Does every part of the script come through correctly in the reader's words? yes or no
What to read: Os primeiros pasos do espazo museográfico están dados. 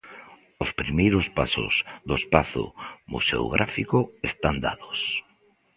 yes